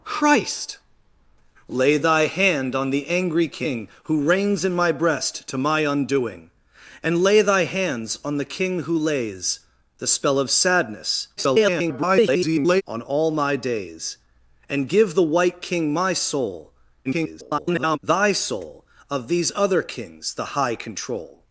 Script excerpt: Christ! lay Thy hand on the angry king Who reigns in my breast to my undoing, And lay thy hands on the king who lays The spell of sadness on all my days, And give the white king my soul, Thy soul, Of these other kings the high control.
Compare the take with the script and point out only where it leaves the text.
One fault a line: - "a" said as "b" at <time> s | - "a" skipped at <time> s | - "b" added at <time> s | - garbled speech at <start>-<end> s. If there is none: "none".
- garbled speech at 11.4-12.8 s
- garbled speech at 17.0-18.0 s